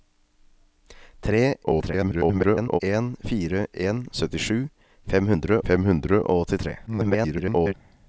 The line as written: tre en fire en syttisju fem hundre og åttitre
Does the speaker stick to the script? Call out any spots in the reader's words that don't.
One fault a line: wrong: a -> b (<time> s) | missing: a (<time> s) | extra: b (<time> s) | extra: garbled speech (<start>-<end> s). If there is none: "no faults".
extra: garbled speech (1.6-2.8 s)
extra: fem hundre (5.7 s)
extra: garbled speech (6.9-7.7 s)